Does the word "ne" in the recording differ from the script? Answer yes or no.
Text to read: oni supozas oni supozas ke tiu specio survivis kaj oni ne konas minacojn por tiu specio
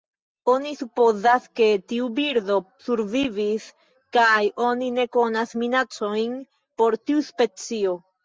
no